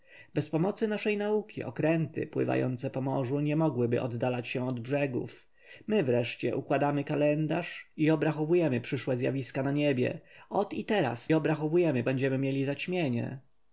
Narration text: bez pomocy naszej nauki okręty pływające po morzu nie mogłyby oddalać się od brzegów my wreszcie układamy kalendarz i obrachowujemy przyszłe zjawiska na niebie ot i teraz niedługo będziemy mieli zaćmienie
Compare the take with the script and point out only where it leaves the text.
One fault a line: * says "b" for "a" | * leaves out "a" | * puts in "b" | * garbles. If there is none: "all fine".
* says "obrachowujemy" for "niedługo"